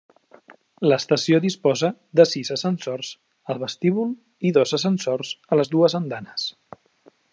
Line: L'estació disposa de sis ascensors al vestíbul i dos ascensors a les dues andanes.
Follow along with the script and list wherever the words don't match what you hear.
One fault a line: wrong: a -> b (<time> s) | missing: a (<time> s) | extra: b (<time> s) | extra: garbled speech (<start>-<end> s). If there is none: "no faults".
no faults